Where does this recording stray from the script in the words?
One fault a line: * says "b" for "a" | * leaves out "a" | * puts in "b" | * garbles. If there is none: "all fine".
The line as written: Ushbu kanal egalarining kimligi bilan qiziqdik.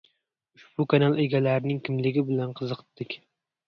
all fine